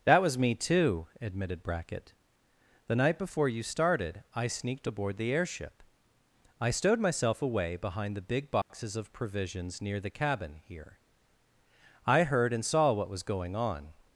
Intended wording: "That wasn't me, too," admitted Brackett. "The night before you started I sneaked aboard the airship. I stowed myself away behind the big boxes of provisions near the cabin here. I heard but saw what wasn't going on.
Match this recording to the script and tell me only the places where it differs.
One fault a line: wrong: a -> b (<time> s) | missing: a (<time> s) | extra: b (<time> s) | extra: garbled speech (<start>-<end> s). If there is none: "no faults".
wrong: wasn't -> was (0.2 s)
wrong: but -> and (12.5 s)
wrong: wasn't -> was (13.1 s)